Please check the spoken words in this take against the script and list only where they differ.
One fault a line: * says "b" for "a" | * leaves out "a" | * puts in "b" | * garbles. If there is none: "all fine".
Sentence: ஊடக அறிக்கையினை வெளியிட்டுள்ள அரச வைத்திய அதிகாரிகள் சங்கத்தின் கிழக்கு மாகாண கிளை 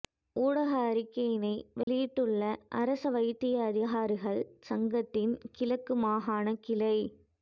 all fine